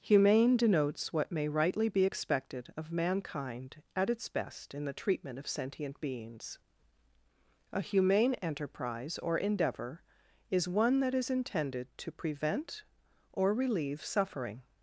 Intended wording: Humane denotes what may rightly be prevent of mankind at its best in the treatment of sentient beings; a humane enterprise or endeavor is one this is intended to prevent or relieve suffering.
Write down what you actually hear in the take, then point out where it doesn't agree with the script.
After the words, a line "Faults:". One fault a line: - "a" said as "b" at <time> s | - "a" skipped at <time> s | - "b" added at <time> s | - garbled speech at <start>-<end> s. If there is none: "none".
Humane denotes what may rightly be expected of mankind at its best in the treatment of sentient beings; a humane enterprise or endeavor is one that is intended to prevent or relieve suffering.
Faults:
- "prevent" said as "expected" at 2.0 s
- "this" said as "that" at 11.0 s